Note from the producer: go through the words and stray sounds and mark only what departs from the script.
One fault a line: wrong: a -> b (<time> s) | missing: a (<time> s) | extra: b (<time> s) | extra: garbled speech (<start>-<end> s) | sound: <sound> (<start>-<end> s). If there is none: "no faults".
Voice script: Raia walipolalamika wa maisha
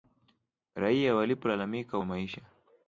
no faults